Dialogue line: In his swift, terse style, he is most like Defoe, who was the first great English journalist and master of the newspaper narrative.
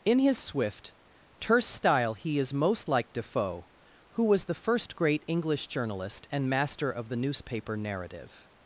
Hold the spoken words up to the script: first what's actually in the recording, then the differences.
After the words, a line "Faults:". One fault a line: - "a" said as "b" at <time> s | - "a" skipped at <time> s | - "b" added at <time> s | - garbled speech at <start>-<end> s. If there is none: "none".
In his swift, terse style, he is most like Defoe, who was the first great English journalist and master of the newspaper narrative.
Faults:
none